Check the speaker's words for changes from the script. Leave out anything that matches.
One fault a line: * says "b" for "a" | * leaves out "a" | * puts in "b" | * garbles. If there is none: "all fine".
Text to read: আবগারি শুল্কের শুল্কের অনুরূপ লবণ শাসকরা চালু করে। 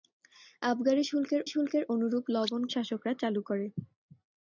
all fine